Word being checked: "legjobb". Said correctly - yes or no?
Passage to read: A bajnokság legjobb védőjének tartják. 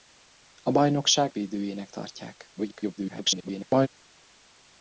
no